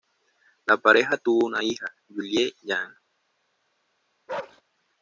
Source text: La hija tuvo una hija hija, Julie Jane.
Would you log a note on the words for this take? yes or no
yes